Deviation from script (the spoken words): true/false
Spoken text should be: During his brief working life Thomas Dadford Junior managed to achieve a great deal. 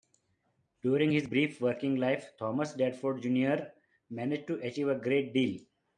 false